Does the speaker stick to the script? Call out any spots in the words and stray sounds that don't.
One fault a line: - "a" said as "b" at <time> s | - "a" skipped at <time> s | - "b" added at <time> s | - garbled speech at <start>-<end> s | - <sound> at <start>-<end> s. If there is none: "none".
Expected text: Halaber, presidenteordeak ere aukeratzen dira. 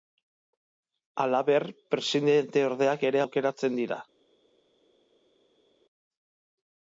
none